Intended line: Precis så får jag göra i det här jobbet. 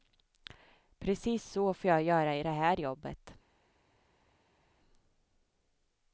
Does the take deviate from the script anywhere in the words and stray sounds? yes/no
no